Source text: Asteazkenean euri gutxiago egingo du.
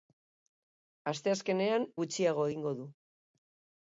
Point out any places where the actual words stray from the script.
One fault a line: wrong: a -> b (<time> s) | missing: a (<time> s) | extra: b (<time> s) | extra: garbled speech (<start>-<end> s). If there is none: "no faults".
missing: euri (1.9 s)